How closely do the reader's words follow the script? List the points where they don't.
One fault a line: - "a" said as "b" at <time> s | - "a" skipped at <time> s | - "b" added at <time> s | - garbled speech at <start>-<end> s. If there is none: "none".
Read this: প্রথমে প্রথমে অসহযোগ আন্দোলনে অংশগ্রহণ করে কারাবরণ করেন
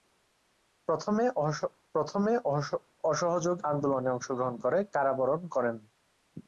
none